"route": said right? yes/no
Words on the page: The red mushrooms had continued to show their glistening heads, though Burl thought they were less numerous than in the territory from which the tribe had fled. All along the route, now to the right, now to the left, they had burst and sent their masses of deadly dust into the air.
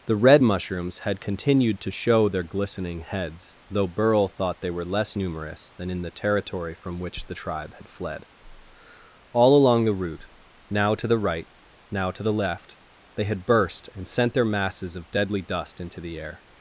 yes